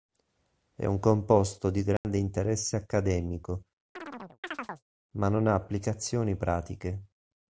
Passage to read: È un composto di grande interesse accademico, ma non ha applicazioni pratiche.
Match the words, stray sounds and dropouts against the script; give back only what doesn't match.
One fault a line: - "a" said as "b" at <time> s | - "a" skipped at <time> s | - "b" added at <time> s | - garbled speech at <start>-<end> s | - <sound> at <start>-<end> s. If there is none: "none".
- dropout at 2.0-2.0 s
- chirp at 4.0-4.8 s